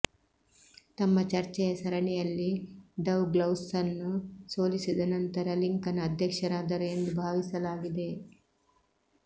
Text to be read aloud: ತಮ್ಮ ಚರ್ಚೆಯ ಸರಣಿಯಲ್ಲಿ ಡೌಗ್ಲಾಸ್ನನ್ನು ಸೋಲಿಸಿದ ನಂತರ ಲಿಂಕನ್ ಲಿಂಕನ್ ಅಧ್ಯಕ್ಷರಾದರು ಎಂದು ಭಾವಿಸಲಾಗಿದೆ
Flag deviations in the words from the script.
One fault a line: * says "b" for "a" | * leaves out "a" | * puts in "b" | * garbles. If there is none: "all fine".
* leaves out "ಲಿಂಕನ್"